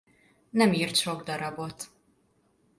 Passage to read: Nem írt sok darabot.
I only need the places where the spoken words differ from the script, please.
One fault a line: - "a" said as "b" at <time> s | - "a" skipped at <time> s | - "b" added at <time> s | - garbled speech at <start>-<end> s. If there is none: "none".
none